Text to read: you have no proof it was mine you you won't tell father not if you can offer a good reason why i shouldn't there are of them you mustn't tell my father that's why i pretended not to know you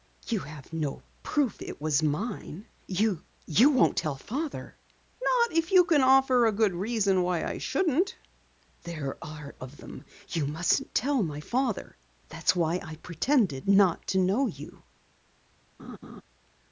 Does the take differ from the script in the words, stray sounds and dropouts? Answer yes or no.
yes